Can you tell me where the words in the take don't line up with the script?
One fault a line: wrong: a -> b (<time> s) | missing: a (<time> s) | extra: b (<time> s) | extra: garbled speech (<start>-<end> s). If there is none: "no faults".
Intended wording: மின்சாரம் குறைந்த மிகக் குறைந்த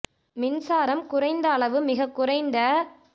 extra: அளவு (1.5 s)